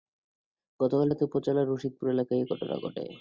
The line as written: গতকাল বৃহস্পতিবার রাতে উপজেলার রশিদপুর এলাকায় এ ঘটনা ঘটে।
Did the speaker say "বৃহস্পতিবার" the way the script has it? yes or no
no